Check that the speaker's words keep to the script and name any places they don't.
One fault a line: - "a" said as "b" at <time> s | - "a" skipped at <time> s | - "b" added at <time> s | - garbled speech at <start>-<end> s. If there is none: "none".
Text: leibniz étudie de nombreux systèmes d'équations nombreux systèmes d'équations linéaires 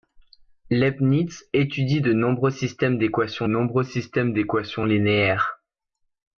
none